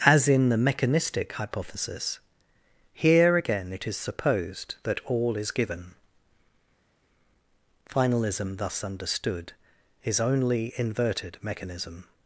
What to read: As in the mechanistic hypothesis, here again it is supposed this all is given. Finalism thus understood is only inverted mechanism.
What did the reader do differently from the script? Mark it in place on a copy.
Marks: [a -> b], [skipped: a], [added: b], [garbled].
As in the mechanistic hypothesis, here again it is supposed [this -> that] all is given. Finalism thus understood is only inverted mechanism.